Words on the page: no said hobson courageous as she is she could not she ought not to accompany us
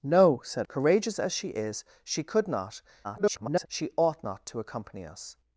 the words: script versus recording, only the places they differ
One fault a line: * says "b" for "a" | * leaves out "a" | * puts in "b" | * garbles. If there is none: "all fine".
* leaves out "hobson"
* garbles